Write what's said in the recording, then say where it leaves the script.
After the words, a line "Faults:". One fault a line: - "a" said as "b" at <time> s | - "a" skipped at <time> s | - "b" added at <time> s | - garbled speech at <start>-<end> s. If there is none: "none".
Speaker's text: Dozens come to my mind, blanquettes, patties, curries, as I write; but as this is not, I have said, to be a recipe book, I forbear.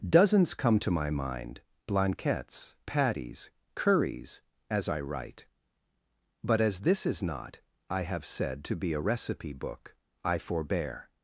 Dozens come to my mind, blanquettes, patties, curries, as I write; but as this is not, I have said, to be a recipe book, I forbear.
Faults:
none